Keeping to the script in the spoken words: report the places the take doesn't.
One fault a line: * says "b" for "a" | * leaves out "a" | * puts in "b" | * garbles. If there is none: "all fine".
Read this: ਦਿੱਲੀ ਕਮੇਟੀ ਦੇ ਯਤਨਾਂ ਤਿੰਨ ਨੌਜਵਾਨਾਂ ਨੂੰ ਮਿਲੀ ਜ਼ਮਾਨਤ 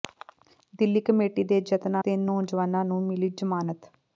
all fine